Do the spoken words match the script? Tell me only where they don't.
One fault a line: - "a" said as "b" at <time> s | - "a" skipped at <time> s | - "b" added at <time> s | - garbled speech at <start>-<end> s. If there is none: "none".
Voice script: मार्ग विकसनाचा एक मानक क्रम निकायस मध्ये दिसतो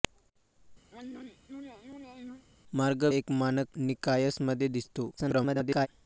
- "विकसनाचा" skipped at 3.0 s
- "क्रम" skipped at 3.7 s
- garbled speech at 5.2-5.9 s